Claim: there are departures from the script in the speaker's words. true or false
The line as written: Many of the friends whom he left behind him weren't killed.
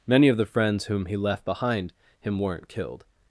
false